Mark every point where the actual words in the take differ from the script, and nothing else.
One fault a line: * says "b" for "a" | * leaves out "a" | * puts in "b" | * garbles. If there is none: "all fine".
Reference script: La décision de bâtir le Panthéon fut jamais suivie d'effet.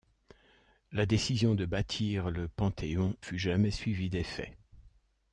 all fine